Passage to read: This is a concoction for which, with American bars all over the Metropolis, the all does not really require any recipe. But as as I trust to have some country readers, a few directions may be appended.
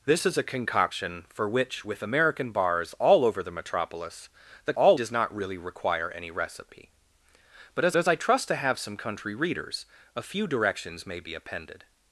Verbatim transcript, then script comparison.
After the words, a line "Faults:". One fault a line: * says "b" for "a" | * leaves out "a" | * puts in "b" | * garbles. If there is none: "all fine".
This is a concoction for which, with American bars all over the Metropolis, the all does not really require any recipe. But as as I trust to have some country readers, a few directions may be appended.
Faults:
all fine